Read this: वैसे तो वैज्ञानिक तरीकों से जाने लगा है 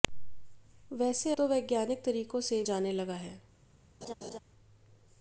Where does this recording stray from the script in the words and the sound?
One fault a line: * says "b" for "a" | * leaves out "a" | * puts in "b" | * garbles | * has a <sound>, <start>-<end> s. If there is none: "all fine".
* has a laugh, 4.0-4.4 s